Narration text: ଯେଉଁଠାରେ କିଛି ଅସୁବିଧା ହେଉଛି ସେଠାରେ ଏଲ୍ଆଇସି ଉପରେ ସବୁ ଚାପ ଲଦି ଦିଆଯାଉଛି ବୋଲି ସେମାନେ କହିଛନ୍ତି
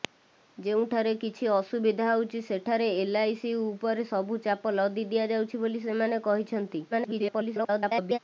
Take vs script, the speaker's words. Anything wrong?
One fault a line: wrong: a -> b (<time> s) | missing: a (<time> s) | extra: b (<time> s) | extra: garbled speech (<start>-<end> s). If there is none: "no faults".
extra: garbled speech (6.9-8.2 s)